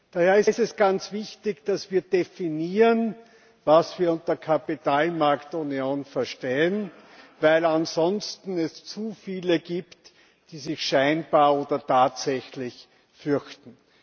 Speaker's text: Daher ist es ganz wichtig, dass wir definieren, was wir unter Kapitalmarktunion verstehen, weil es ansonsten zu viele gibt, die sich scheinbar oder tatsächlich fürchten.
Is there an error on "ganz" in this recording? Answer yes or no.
no